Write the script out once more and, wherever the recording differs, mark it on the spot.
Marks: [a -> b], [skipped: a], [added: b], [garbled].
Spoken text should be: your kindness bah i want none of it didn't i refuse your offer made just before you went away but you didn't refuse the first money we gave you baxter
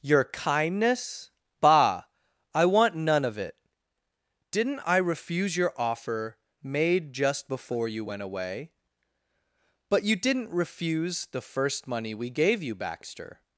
your kindness bah i want none of it didn't i refuse your offer made just before you went away but you didn't refuse the first money we gave you baxter